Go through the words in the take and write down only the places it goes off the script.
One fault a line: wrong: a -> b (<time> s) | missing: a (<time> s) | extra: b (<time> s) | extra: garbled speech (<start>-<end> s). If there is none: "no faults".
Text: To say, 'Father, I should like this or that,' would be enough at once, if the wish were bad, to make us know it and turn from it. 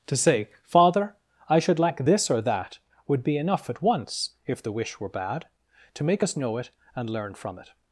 wrong: turn -> learn (7.1 s)